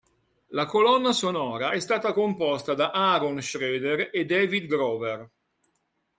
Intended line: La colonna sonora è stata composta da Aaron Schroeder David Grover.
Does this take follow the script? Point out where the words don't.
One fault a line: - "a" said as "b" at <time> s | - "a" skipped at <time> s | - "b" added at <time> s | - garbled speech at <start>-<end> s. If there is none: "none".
- "e" added at 4.1 s